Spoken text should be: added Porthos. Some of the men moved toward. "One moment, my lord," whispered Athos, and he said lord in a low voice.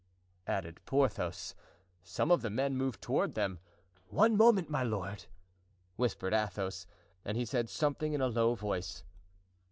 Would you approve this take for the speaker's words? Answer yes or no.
no